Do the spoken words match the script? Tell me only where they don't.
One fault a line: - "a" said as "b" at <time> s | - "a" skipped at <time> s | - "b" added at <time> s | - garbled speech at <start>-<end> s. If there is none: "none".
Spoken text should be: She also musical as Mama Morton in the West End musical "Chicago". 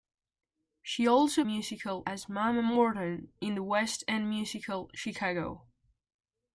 none